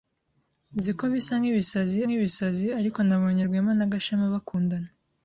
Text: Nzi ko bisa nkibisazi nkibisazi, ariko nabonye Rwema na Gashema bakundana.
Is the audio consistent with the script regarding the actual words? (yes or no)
yes